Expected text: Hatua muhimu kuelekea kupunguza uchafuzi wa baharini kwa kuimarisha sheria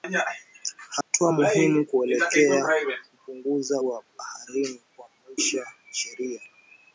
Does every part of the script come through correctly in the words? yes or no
no